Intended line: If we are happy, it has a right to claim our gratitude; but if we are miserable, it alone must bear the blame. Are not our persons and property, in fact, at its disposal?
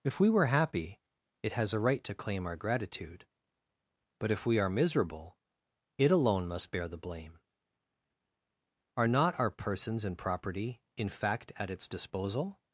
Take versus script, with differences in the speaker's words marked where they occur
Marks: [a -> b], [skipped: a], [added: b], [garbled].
If we [are -> were] happy, it has a right to claim our gratitude; but if we are miserable, it alone must bear the blame. Are not our persons and property, in fact, at its disposal?